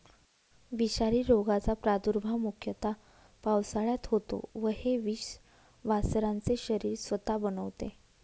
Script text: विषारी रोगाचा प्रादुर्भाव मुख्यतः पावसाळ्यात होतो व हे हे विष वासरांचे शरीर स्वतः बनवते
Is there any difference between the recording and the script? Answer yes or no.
yes